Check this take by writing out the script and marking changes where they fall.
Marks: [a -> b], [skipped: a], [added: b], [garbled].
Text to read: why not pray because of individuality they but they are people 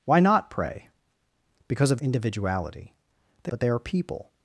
why not pray because of individuality they but they are people